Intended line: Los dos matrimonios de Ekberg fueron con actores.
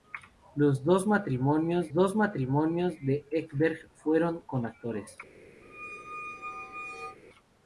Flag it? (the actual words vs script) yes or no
yes